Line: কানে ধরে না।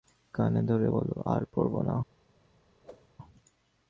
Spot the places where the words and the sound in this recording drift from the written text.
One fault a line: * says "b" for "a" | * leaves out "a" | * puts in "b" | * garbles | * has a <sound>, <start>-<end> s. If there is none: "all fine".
* puts in "বলো আর পড়ব"
* has a whoosh, 2.8-3.1 s